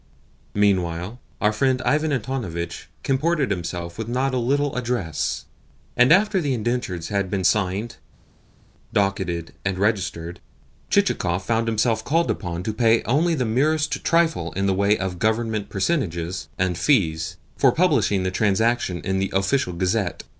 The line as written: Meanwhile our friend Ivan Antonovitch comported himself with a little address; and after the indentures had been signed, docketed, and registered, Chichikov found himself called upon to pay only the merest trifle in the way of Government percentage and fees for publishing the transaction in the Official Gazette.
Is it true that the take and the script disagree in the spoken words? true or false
true